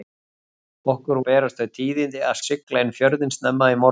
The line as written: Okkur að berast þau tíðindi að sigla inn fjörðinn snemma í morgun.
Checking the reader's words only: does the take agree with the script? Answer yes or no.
yes